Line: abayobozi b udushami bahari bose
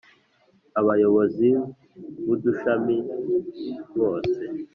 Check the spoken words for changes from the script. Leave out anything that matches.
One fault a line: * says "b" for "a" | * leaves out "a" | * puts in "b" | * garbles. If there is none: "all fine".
* leaves out "bahari"